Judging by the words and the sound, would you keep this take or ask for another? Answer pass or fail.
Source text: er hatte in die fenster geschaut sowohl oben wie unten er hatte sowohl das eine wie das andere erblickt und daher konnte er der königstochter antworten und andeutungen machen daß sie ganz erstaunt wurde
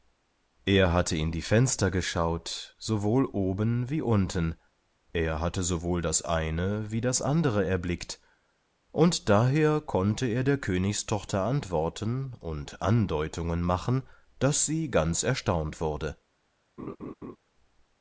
fail